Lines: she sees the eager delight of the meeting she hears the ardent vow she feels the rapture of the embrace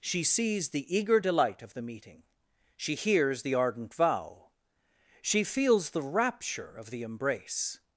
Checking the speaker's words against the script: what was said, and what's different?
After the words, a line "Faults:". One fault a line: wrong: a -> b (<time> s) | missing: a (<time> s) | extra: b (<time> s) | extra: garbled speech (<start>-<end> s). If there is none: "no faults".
she sees the eager delight of the meeting she hears the ardent vow she feels the rapture of the embrace
Faults:
no faults